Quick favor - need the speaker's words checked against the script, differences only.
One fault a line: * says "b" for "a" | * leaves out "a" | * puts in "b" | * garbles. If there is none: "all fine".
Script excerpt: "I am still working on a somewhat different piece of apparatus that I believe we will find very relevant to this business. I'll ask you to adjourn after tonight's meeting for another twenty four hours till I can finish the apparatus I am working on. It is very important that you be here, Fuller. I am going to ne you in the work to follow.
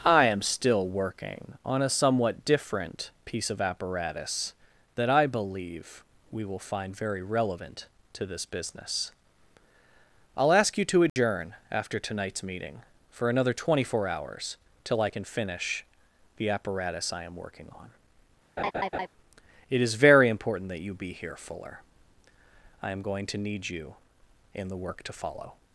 * says "need" for "ne"